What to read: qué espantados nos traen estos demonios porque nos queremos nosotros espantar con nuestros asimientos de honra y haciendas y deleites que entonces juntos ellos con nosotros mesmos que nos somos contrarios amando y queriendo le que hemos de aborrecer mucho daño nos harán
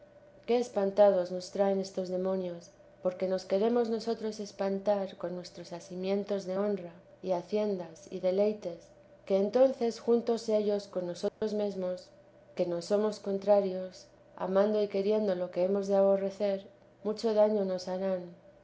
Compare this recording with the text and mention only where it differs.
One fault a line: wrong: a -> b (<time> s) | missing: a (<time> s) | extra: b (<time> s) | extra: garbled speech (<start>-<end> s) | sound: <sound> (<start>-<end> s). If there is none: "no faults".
sound: dropout (11.3-11.4 s)
wrong: le -> lo (15.3 s)